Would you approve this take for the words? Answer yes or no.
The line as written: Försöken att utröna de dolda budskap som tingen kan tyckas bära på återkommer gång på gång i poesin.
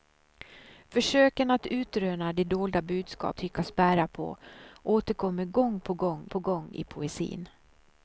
no